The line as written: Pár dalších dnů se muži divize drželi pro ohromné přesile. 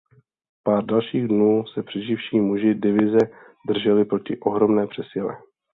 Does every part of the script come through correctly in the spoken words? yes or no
no